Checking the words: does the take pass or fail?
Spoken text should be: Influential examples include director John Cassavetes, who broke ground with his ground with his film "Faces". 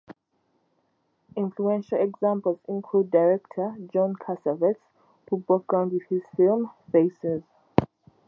fail